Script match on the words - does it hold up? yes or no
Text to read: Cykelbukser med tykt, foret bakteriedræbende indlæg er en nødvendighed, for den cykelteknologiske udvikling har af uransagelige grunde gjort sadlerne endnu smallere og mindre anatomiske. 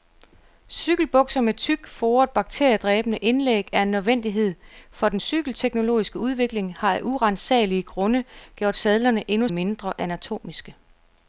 no